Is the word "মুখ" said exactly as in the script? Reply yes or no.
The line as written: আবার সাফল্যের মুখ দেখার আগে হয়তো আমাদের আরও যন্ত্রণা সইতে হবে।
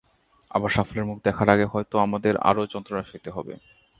yes